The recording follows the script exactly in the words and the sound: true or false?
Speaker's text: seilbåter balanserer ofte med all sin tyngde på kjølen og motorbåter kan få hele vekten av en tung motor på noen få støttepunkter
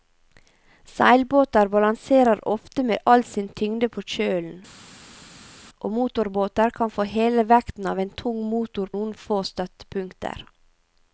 false